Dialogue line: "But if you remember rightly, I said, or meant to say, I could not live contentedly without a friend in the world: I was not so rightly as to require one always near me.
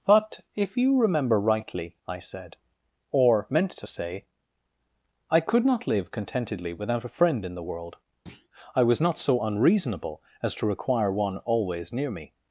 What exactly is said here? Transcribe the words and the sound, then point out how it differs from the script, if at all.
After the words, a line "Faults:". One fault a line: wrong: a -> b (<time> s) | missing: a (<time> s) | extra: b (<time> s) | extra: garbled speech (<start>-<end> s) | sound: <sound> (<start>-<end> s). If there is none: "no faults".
"But if you remember rightly, I said, or meant to say, I could not live contentedly without a friend in the world: I was not so unreasonable as to require one always near me.
Faults:
sound: thud (8.3-8.5 s)
wrong: rightly -> unreasonable (9.4 s)